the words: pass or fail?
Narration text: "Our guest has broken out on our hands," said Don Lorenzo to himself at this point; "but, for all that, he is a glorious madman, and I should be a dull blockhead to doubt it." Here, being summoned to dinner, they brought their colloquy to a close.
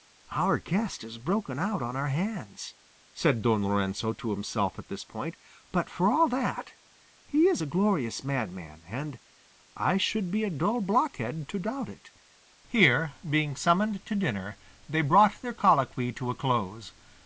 pass